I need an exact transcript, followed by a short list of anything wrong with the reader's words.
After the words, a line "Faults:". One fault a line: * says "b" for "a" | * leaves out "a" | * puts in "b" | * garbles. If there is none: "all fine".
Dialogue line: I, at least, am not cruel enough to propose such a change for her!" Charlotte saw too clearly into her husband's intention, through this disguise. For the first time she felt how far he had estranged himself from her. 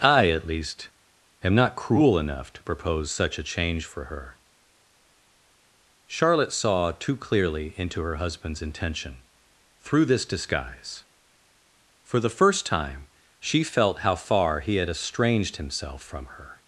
I, at least, am not cruel enough to propose such a change for her!" Charlotte saw too clearly into her husband's intention, through this disguise. For the first time she felt how far he had estranged himself from her.
Faults:
all fine